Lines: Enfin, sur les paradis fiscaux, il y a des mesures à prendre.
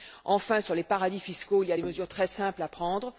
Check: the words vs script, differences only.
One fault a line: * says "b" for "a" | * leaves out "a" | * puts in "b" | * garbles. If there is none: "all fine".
* puts in "très simples"